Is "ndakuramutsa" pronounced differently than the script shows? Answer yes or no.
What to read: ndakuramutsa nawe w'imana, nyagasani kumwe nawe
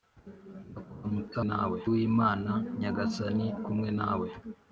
no